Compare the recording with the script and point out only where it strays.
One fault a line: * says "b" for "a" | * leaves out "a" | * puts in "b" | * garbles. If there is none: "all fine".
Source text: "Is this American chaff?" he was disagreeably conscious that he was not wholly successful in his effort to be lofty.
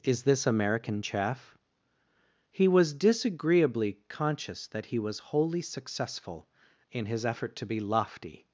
* leaves out "not"